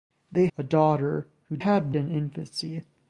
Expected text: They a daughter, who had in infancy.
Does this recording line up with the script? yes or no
yes